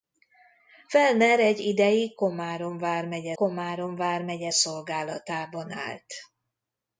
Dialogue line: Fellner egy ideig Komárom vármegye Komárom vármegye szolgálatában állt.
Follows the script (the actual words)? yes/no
yes